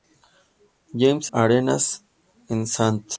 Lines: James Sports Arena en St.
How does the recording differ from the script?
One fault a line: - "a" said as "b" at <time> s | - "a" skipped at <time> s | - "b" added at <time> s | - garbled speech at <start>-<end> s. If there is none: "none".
- "Sports" skipped at 1.3 s